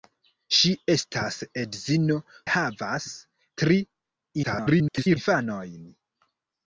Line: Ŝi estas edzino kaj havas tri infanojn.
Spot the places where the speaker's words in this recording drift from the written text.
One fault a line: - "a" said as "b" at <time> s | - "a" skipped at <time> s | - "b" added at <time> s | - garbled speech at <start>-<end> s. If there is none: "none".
- "kaj" skipped at 2.2 s
- garbled speech at 4.4-5.2 s